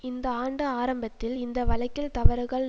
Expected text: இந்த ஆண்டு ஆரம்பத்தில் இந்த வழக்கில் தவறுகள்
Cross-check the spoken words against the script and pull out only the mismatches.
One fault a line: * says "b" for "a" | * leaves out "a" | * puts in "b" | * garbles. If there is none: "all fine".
all fine